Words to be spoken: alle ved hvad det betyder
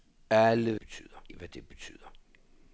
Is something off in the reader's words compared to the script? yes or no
yes